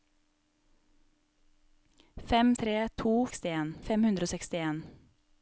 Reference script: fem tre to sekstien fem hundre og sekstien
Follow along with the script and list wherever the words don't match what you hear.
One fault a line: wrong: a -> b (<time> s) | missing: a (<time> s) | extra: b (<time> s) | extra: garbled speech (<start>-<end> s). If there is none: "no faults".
no faults